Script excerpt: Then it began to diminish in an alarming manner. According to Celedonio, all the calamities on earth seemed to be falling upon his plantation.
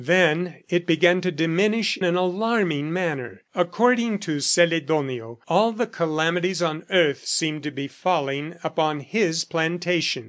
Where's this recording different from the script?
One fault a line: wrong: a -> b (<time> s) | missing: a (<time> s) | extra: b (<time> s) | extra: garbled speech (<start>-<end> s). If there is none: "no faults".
missing: in (1.9 s)